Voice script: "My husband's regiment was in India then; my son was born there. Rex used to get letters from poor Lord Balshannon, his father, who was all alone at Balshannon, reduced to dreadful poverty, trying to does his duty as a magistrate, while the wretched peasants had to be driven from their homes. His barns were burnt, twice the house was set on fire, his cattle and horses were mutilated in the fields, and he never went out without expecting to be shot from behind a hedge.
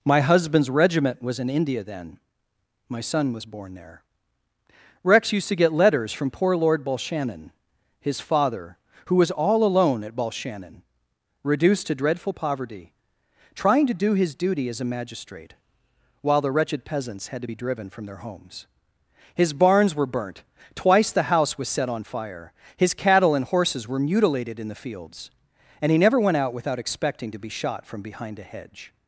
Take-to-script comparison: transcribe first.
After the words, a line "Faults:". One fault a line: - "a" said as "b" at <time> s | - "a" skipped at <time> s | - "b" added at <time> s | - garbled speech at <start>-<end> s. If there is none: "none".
"My husband's regiment was in India then; my son was born there. Rex used to get letters from poor Lord Balshannon, his father, who was all alone at Balshannon, reduced to dreadful poverty, trying to do his duty as a magistrate, while the wretched peasants had to be driven from their homes. His barns were burnt, twice the house was set on fire, his cattle and horses were mutilated in the fields, and he never went out without expecting to be shot from behind a hedge.
Faults:
- "does" said as "do" at 13.9 s